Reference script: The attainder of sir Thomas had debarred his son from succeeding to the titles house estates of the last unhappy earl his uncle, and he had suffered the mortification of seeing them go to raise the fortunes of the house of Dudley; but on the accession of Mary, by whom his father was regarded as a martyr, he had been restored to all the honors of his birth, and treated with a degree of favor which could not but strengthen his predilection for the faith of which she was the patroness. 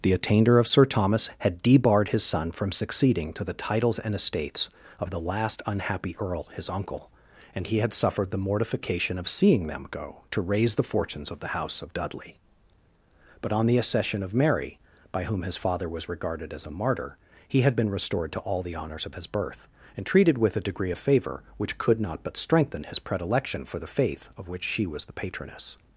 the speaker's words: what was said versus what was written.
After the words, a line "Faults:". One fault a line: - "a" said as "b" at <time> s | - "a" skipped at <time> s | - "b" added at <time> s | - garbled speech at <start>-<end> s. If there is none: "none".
The attainder of sir Thomas had debarred his son from succeeding to the titles and estates of the last unhappy earl his uncle, and he had suffered the mortification of seeing them go to raise the fortunes of the house of Dudley; but on the accession of Mary, by whom his father was regarded as a martyr, he had been restored to all the honors of his birth, and treated with a degree of favor which could not but strengthen his predilection for the faith of which she was the patroness.
Faults:
- "house" said as "and" at 4.0 s